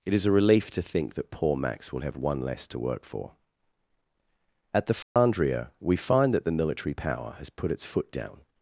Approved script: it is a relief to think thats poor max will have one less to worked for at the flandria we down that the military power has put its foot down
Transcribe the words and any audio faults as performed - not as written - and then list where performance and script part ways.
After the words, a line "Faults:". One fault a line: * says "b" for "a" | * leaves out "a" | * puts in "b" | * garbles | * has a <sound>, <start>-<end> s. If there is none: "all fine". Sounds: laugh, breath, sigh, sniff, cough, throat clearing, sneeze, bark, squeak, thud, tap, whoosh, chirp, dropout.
it is a relief to think that poor max will have one less to work for at the flandria we find that the military power has put its foot down
Faults:
* says "that" for "thats"
* says "work" for "worked"
* has a dropout, 5.0-5.2 s
* says "find" for "down"